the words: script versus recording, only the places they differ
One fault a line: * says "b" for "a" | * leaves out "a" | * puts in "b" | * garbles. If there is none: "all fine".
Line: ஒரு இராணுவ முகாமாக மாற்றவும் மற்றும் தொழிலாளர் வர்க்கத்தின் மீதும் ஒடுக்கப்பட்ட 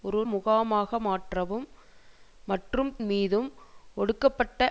* leaves out "இராணுவ"
* leaves out "தொழிலாளர் வர்க்கத்தின்"